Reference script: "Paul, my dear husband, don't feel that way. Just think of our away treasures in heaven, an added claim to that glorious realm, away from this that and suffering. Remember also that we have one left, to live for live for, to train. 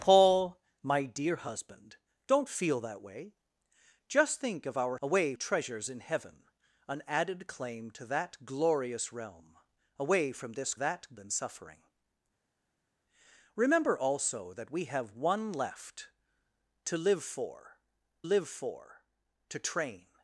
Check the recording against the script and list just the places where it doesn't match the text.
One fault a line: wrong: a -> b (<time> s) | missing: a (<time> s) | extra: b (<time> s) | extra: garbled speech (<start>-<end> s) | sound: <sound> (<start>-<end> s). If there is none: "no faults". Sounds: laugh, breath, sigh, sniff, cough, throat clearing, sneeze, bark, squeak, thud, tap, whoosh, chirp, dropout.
no faults